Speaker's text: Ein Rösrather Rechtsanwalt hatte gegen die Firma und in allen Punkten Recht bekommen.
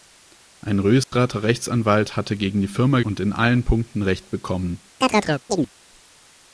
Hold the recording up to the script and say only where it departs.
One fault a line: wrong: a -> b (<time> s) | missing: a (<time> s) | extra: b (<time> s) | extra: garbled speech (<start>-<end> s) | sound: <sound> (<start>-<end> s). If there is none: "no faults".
sound: dropout (1.0-1.1 s)
sound: chirp (5.0-5.7 s)